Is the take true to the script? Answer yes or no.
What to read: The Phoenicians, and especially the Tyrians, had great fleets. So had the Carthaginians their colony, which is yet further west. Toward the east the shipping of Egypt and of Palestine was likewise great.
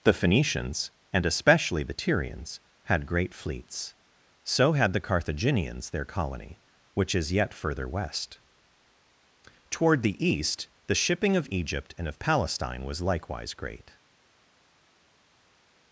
yes